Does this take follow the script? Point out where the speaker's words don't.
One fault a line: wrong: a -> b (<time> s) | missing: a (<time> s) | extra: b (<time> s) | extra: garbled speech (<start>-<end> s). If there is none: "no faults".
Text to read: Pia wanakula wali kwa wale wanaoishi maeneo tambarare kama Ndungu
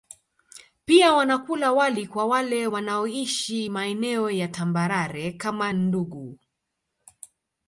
extra: ya (4.3 s)